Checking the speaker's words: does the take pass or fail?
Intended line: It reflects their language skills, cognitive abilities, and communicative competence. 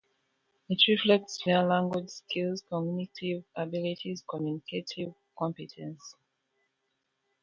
fail